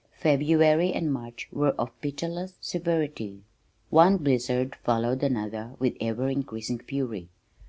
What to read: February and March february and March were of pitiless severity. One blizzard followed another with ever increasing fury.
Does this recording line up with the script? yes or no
no